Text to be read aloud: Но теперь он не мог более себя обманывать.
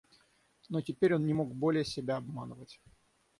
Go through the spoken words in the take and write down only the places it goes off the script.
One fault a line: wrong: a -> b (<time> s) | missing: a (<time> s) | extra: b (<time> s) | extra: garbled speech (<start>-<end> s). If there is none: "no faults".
no faults